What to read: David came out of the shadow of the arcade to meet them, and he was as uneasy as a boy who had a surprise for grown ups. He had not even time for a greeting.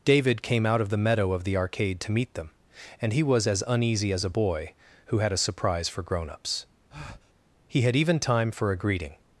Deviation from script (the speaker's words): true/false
true